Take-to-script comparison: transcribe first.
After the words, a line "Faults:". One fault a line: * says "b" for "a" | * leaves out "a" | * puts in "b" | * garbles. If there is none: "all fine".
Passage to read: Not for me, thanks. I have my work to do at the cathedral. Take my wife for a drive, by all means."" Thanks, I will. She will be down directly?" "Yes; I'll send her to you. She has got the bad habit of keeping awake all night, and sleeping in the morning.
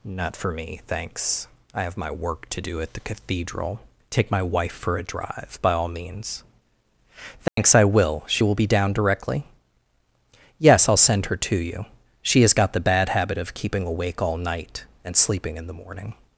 Not for me, thanks. I have my work to do at the cathedral. Take my wife for a drive, by all means."" Thanks, I will. She will be down directly?" "Yes; I'll send her to you. She has got the bad habit of keeping awake all night, and sleeping in the morning.
Faults:
all fine